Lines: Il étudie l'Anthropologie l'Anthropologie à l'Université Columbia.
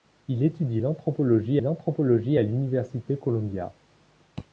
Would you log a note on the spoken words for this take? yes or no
no